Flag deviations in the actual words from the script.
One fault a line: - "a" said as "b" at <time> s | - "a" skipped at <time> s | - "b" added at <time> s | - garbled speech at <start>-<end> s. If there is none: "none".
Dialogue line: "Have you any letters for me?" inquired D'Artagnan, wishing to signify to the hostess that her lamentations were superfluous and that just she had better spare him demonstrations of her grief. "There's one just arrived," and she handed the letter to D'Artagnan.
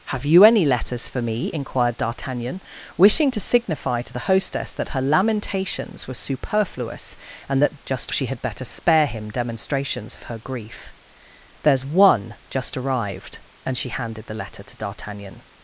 none